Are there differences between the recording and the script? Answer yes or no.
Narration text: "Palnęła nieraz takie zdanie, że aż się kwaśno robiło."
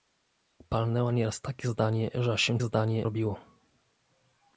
yes